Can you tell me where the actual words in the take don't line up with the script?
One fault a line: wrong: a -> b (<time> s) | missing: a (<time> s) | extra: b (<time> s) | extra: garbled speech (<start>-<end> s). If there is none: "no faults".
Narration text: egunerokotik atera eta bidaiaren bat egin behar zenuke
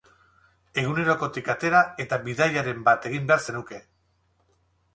no faults